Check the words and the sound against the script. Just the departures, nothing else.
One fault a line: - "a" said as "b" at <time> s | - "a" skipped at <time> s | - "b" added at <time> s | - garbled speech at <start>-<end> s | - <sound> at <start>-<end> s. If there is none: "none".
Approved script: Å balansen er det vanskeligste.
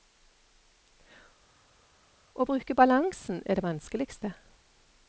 - "bruke" added at 2.4 s